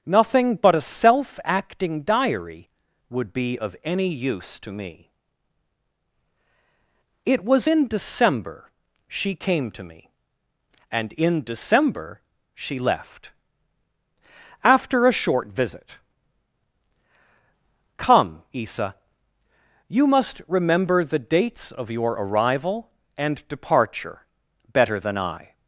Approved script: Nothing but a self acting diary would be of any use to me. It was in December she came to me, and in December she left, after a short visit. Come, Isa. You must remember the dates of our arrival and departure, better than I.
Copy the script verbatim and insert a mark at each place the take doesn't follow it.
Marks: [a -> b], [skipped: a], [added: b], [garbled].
Nothing but a self acting diary would be of any use to me. It was in December she came to me, and in December she left, after a short visit. Come, Isa. You must remember the dates of [our -> your] arrival and departure, better than I.